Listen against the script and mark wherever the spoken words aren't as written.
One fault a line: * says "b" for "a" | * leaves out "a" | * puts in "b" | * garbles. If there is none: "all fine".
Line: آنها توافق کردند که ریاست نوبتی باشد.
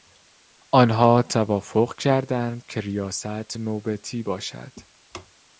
all fine